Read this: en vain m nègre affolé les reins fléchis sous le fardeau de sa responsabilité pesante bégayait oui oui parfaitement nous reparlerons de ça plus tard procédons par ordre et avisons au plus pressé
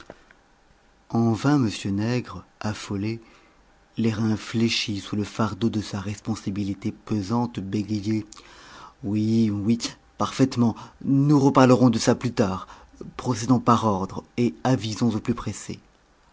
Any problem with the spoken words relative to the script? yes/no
no